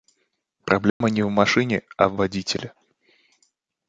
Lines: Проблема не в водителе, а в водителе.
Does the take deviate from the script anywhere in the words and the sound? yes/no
yes